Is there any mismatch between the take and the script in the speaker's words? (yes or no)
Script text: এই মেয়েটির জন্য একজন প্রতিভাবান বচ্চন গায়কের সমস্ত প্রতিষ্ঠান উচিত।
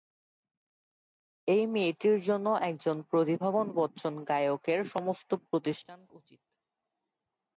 no